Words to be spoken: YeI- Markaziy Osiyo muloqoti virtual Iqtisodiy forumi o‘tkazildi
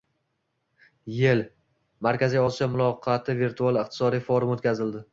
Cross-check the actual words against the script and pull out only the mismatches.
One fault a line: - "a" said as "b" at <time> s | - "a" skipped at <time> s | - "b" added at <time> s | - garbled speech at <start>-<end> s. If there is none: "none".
none